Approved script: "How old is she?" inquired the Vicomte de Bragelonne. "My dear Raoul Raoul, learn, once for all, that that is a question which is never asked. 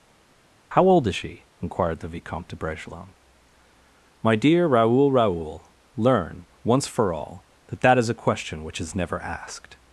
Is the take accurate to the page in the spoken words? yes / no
yes